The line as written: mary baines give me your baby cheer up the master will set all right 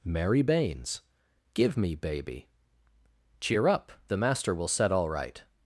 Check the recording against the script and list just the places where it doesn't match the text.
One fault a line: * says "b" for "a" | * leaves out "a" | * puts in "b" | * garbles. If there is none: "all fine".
* leaves out "your"